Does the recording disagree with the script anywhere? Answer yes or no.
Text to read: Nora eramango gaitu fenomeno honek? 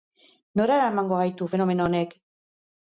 no